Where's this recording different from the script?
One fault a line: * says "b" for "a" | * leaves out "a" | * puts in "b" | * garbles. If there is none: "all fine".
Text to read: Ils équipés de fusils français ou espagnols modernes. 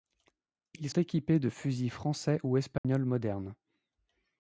all fine